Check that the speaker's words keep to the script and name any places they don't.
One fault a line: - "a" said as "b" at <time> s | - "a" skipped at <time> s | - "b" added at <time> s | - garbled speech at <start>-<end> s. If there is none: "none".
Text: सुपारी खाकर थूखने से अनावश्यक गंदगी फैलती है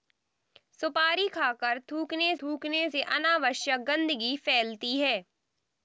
- "थूखने" added at 2.4 s